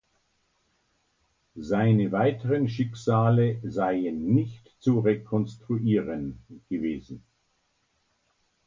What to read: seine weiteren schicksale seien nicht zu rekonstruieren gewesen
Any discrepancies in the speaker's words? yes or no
no